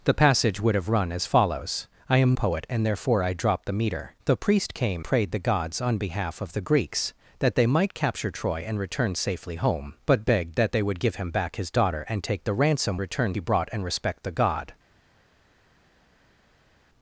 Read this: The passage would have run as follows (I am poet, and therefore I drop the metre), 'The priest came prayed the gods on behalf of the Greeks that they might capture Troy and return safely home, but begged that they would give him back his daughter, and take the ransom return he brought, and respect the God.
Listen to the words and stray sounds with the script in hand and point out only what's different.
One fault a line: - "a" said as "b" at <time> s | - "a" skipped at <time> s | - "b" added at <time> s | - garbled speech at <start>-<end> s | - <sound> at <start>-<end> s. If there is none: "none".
none